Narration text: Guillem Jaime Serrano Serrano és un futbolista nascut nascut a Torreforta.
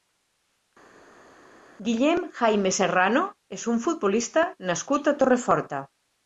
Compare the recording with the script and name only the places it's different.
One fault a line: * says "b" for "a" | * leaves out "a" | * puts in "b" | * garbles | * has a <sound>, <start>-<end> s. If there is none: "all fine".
* leaves out "Serrano"
* leaves out "nascut"